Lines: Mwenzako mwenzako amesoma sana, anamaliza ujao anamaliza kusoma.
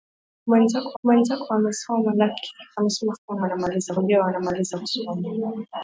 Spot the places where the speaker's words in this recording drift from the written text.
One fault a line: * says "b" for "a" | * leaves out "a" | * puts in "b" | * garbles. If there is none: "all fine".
all fine